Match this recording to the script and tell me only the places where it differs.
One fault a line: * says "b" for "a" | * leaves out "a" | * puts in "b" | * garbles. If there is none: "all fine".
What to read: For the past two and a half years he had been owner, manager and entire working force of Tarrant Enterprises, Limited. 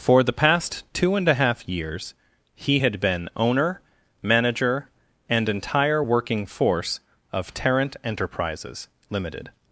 all fine